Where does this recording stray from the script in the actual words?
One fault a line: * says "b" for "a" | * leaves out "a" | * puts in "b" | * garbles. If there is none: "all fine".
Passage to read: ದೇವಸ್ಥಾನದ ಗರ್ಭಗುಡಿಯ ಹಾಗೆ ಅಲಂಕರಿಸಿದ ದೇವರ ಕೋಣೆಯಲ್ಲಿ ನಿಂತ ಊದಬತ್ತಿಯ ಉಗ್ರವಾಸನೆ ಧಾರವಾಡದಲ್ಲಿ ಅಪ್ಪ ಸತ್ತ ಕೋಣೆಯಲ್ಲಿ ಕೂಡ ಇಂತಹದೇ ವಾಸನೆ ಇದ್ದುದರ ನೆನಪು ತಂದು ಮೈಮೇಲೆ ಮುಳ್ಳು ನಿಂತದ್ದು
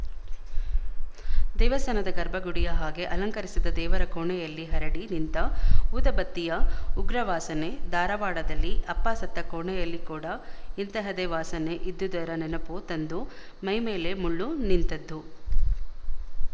* puts in "ಹರಡಿ"